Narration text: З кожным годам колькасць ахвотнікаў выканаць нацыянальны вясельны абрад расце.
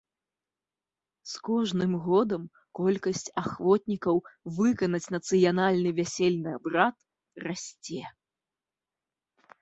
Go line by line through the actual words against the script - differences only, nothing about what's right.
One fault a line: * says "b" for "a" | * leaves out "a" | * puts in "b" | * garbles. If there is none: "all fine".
all fine